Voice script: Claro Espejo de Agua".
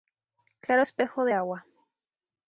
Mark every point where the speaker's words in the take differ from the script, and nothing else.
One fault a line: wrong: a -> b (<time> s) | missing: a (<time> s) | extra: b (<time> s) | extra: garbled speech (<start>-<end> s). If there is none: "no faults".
no faults